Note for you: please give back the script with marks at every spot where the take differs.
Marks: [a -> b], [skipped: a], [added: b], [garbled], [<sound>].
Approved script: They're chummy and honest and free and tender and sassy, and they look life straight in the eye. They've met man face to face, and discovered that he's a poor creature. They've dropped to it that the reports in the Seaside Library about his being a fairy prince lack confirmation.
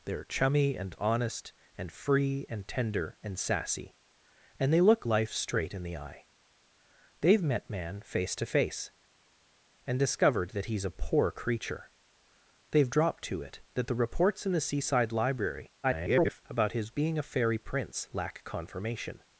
They're chummy and honest and free and tender and sassy, and they look life straight in the eye. They've met man face to face, and discovered that he's a poor creature. They've dropped to it that the reports in the Seaside Library [garbled] about his being a fairy prince lack confirmation.